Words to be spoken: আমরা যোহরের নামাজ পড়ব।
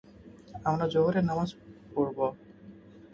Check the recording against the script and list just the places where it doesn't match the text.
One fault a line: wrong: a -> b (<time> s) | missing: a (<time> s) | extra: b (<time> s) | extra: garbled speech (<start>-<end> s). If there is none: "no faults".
no faults